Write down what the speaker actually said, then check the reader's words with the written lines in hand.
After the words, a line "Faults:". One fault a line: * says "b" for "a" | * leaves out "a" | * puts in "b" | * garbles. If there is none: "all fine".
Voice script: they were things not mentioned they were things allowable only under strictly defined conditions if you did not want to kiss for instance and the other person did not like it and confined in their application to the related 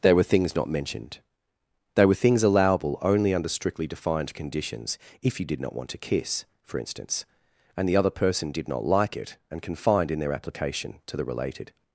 they were things not mentioned they were things allowable only under strictly defined conditions if you did not want to kiss for instance and the other person did not like it and confined in their application to the related
Faults:
all fine